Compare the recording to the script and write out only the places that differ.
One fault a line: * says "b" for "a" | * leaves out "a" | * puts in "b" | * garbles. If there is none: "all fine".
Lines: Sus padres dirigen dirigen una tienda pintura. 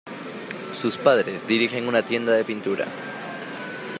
* leaves out "dirigen"
* puts in "de"